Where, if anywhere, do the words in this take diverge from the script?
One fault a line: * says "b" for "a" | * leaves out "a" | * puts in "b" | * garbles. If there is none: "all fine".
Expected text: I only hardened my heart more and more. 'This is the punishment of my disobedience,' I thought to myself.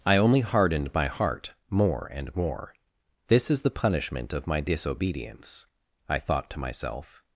all fine